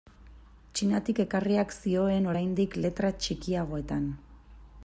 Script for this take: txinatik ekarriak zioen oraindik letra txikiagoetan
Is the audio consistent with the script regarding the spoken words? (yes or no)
yes